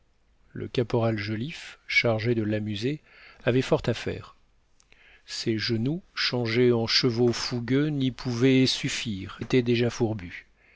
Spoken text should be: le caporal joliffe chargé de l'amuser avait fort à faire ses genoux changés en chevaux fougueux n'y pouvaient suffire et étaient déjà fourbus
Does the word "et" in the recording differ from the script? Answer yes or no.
yes